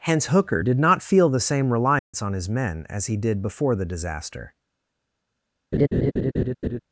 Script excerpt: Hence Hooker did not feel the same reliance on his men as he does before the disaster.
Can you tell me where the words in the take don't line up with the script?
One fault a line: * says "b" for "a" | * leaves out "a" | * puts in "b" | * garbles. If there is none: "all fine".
* says "did" for "does"